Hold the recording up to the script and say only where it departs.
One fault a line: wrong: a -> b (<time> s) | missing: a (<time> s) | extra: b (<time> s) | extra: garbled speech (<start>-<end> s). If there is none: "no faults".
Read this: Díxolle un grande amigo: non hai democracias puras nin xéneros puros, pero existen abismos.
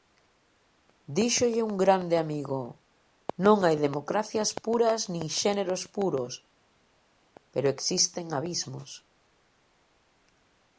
no faults